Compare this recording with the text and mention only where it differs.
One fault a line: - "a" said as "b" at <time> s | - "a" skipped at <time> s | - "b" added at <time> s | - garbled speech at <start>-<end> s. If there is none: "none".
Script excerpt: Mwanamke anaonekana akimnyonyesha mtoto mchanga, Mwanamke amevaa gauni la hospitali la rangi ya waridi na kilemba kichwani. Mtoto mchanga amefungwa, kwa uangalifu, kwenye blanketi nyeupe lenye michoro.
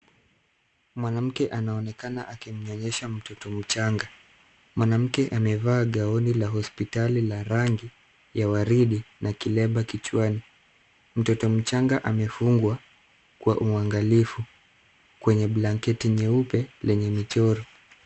none